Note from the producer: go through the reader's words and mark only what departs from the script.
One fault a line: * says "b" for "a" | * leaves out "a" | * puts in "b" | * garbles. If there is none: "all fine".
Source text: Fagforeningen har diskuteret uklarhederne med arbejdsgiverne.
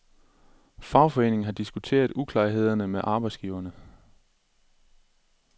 all fine